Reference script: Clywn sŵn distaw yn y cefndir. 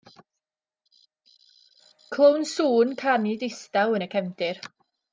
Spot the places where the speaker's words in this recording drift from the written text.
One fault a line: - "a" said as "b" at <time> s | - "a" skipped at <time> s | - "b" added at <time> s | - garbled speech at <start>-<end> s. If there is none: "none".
- "canu" added at 3.0 s